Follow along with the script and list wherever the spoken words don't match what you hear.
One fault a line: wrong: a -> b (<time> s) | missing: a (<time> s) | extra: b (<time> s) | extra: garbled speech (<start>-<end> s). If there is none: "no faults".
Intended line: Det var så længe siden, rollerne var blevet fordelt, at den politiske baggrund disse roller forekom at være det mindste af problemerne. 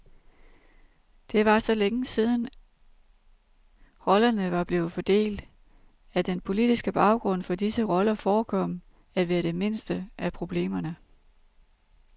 extra: for (7.4 s)